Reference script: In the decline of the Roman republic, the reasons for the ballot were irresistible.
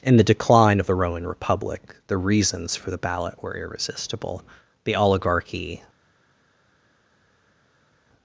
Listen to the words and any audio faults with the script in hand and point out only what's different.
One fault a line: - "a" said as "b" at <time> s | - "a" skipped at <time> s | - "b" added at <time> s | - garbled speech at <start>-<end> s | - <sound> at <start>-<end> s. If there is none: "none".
- "The oligarchy" added at 4.8 s